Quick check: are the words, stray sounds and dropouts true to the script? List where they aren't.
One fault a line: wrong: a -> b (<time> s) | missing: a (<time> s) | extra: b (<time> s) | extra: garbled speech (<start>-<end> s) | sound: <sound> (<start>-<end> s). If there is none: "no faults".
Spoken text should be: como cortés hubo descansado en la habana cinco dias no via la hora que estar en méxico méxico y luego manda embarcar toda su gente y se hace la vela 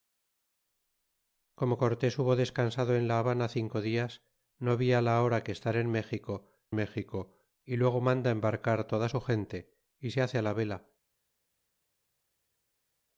no faults